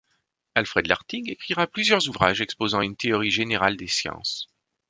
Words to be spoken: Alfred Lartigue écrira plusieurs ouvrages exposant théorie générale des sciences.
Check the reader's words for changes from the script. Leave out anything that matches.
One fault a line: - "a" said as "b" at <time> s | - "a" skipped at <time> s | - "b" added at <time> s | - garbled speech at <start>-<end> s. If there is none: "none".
- "une" added at 2.8 s